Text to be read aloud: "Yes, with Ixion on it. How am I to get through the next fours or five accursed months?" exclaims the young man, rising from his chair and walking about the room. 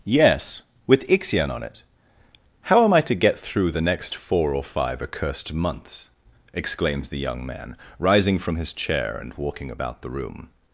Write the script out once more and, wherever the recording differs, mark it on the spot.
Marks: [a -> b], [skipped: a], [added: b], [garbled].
"Yes, with Ixion on it. How am I to get through the next [fours -> four] or five accursed months?" exclaims the young man, rising from his chair and walking about the room.